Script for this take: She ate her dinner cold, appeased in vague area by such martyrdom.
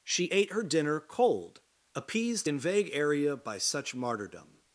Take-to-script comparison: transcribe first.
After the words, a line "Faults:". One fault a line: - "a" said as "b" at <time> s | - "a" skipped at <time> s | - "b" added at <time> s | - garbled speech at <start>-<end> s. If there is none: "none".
She ate her dinner cold, appeased in vague area by such martyrdom.
Faults:
none